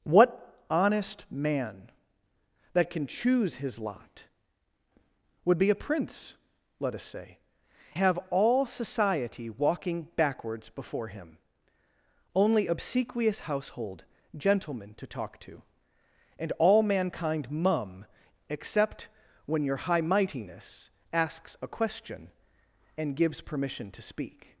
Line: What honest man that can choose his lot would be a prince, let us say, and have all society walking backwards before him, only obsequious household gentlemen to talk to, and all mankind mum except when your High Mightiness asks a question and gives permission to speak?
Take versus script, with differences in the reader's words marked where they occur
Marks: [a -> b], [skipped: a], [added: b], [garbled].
What honest man that can choose his lot would be a prince, let us say, [skipped: and] have all society walking backwards before him, only obsequious household gentlemen to talk to, and all mankind mum except when your High Mightiness asks a question and gives permission to speak?